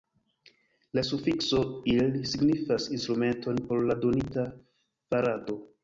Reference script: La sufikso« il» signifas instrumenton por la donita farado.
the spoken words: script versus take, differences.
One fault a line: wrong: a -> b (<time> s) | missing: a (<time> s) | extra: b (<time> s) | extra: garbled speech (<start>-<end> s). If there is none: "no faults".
no faults